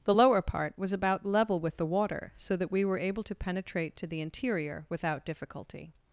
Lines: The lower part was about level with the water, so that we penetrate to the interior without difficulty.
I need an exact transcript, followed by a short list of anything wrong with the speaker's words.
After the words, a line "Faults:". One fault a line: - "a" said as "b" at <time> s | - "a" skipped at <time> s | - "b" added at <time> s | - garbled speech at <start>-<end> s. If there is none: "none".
The lower part was about level with the water, so that we were able to penetrate to the interior without difficulty.
Faults:
- "were able to" added at 2.8 s